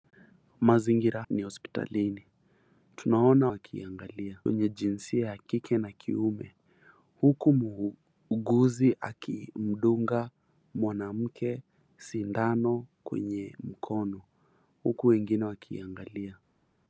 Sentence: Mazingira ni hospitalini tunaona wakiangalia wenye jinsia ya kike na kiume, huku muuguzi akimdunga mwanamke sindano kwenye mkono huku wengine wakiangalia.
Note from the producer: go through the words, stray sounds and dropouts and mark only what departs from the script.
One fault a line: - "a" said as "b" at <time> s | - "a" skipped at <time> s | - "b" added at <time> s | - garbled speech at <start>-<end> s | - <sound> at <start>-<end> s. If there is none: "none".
none